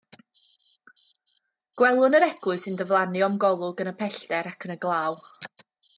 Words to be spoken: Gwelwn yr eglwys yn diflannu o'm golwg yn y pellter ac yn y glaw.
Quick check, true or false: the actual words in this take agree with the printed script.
true